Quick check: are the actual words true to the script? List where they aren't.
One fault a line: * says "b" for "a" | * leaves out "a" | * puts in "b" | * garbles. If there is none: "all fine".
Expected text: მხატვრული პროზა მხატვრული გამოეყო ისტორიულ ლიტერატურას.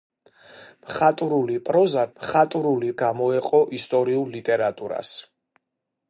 all fine